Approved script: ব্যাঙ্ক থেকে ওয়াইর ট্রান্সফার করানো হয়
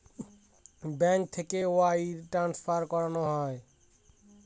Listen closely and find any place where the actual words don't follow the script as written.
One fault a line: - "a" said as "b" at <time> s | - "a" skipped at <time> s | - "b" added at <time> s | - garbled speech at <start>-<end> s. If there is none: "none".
none